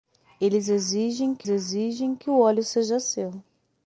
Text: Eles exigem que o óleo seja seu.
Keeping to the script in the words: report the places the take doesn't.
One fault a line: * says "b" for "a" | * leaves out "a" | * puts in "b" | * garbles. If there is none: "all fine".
* puts in "exigem que"